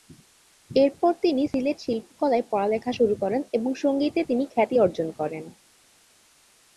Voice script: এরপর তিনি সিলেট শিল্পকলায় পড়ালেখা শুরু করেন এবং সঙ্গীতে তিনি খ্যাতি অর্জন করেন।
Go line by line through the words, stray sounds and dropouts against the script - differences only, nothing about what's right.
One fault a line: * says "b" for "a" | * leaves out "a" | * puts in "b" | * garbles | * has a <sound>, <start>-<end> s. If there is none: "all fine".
all fine